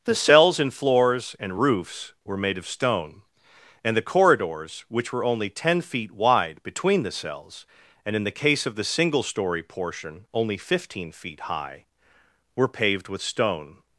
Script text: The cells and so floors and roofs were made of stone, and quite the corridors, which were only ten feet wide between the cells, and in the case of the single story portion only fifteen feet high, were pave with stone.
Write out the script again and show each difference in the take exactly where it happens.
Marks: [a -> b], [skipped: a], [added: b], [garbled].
The cells and [skipped: so] floors and roofs were made of stone, and [skipped: quite] the corridors, which were only ten feet wide between the cells, and in the case of the single story portion only fifteen feet high, were [pave -> paved] with stone.